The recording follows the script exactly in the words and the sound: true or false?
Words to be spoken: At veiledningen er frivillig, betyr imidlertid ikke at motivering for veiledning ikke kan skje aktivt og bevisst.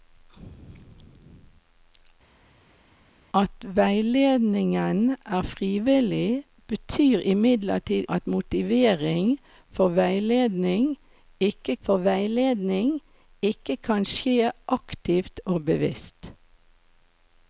false